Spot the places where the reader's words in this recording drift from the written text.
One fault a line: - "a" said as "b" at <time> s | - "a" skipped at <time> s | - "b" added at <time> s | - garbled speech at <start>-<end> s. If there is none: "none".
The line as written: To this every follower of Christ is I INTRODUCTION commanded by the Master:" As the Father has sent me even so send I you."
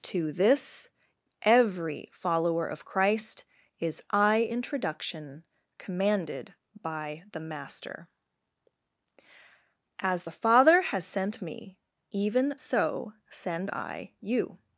none